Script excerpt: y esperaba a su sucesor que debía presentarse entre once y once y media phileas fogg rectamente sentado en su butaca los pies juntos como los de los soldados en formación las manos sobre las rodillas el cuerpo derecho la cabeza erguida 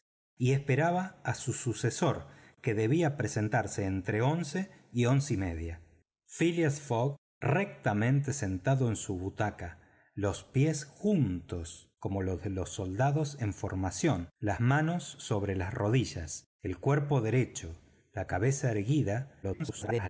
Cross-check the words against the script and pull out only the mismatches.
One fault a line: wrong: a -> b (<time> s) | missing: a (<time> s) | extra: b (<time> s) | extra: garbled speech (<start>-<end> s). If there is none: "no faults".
extra: garbled speech (19.4-20.1 s)